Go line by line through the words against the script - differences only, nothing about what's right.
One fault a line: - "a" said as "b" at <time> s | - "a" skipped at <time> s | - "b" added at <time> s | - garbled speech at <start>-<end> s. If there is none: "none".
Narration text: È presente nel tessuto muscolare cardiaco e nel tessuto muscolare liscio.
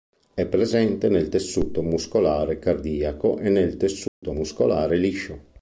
none